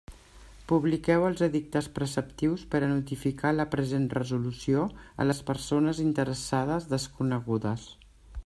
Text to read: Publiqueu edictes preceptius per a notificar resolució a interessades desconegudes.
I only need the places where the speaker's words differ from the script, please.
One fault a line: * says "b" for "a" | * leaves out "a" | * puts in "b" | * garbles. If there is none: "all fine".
* puts in "els"
* puts in "la present"
* puts in "les persones"